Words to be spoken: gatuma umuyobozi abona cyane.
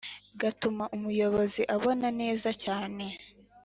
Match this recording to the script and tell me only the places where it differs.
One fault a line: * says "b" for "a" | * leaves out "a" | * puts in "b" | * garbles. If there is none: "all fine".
* puts in "neza"